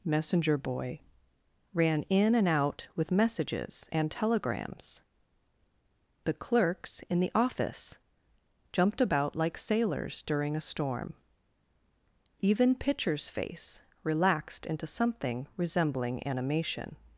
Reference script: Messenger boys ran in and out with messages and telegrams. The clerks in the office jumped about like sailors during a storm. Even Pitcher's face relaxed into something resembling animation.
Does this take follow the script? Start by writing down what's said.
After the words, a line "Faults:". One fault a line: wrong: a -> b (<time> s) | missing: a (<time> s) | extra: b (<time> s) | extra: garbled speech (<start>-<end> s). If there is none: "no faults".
Messenger boy ran in and out with messages and telegrams. The clerks in the office jumped about like sailors during a storm. Even Pitcher's face relaxed into something resembling animation.
Faults:
wrong: boys -> boy (0.6 s)